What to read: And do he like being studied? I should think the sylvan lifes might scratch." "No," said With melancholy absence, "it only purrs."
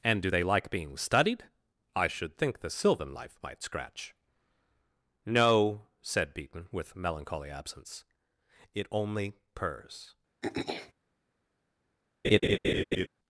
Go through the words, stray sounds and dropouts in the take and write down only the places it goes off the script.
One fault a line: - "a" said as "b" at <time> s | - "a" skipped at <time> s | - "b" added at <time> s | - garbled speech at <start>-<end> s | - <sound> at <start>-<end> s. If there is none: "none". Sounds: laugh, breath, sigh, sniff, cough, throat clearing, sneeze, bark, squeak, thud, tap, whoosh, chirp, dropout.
- "he" said as "they" at 0.3 s
- "lifes" said as "life" at 3.1 s
- "Beaton" added at 6.4 s
- throat clearing at 10.4-10.9 s
- laugh at 12.2-13.1 s